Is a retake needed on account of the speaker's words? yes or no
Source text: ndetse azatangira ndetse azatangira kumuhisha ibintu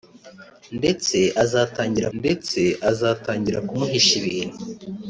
no